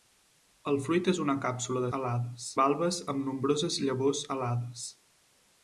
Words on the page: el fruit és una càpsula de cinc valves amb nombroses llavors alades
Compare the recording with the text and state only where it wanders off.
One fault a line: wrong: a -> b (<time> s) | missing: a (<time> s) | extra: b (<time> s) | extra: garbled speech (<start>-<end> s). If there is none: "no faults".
wrong: cinc -> alades (2.0 s)